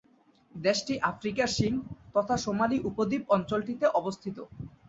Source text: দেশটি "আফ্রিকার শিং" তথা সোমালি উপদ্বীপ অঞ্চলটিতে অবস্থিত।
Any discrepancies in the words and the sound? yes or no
no